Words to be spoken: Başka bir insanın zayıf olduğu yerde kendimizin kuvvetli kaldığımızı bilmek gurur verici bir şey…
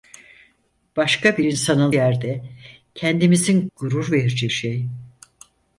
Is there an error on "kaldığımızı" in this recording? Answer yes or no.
yes